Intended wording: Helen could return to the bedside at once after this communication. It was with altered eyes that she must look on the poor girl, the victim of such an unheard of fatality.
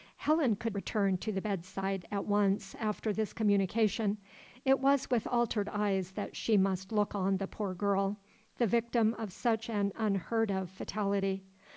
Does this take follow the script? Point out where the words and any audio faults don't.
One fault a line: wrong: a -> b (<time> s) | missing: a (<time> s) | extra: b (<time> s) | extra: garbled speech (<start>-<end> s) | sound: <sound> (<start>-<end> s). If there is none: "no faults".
no faults